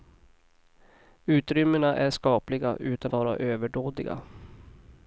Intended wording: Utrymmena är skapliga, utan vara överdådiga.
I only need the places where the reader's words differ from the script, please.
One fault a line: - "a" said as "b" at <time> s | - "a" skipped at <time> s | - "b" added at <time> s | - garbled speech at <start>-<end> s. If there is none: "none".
none